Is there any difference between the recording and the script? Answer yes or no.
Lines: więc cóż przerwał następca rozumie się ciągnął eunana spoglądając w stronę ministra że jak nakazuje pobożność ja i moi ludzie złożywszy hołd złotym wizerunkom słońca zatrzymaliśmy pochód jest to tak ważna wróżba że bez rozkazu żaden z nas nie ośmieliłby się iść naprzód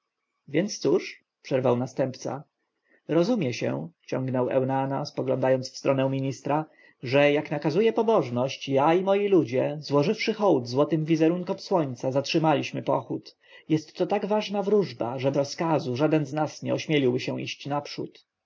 yes